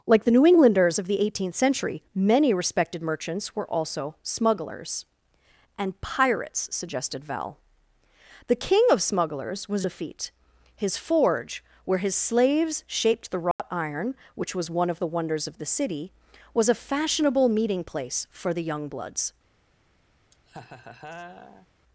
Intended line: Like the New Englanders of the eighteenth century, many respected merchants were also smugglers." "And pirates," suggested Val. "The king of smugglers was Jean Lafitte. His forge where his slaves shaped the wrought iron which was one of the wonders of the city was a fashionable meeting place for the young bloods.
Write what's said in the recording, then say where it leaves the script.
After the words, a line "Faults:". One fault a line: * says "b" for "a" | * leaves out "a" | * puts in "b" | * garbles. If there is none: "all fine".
Like the New Englanders of the eighteenth century, many respected merchants were also smugglers." "And pirates," suggested Val. "The king of smugglers was Lafitte. His forge where his slaves shaped the wrought iron which was one of the wonders of the city was a fashionable meeting place for the young bloods.
Faults:
* leaves out "Jean"